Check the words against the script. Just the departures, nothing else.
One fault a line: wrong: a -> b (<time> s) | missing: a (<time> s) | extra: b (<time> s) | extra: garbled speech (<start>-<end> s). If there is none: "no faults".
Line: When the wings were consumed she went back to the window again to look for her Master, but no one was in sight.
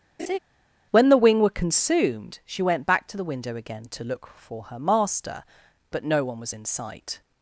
wrong: wings -> wing (1.2 s)